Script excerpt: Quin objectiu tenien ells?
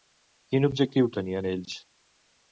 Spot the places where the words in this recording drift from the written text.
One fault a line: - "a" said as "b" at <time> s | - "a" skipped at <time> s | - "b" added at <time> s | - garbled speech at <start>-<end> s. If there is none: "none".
none